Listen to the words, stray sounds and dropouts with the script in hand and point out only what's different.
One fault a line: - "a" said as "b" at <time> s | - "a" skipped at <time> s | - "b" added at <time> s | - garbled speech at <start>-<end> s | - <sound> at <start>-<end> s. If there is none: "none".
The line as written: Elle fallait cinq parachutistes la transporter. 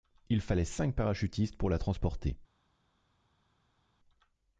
- "Elle" said as "Il" at 0.3 s
- "pour" added at 1.6 s